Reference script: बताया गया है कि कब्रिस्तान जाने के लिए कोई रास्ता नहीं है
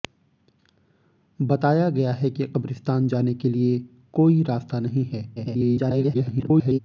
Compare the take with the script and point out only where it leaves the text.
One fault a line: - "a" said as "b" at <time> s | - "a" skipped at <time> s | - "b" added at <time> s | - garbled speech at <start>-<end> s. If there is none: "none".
- garbled speech at 5.4-6.8 s